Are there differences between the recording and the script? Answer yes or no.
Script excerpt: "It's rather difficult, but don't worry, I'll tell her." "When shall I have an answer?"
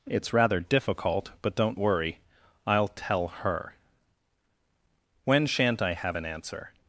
yes